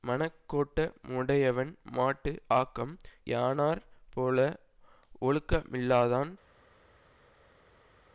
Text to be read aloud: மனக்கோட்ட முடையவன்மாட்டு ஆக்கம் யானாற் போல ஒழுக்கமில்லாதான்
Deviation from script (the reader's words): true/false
false